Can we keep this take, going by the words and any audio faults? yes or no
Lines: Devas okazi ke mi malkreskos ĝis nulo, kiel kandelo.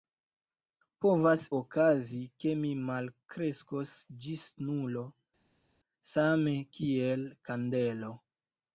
no